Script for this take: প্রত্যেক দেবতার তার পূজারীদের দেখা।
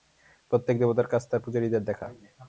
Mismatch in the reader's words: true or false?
true